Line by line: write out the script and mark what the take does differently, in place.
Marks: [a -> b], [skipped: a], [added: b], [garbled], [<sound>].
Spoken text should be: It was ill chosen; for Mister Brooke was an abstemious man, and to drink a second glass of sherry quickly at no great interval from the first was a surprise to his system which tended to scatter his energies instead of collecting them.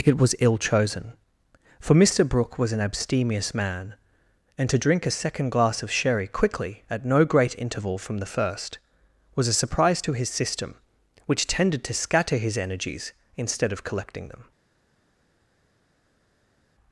It was ill chosen; for Mister Brooke was an abstemious man, and to drink a second glass of sherry quickly at no great interval from the first was a surprise to his system which tended to scatter his energies instead of collecting them.